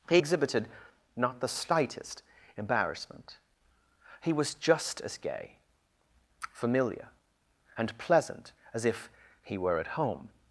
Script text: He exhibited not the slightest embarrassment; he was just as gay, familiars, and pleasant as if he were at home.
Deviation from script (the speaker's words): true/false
true